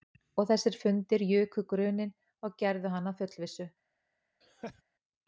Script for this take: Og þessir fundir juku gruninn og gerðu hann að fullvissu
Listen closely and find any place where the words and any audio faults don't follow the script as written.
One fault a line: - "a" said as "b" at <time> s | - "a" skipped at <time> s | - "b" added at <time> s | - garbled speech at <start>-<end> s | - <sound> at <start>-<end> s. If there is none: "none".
- laugh at 4.4-4.8 s